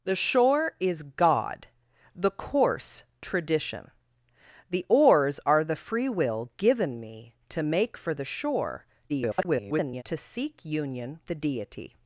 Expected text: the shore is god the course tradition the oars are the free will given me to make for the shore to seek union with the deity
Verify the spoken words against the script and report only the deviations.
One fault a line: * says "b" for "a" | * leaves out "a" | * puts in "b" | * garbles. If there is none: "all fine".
* garbles
* leaves out "with"